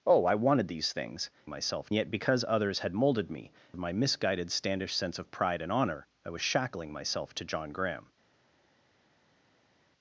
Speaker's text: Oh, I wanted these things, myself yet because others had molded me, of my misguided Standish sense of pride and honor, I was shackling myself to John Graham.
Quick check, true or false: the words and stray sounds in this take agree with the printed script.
true